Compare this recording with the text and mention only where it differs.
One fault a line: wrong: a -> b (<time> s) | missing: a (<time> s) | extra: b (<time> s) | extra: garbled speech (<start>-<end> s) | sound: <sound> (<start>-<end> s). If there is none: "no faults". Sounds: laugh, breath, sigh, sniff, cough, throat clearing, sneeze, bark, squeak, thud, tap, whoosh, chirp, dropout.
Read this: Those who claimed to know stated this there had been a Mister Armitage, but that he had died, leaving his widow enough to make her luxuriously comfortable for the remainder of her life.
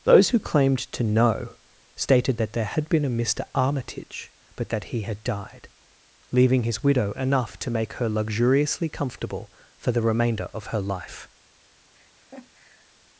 wrong: this -> that (2.4 s)
sound: laugh (11.9-12.9 s)